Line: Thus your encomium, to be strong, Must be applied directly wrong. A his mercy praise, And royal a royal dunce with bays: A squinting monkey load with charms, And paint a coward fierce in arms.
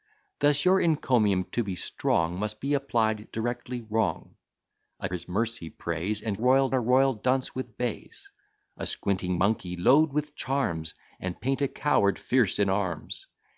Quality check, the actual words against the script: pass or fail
pass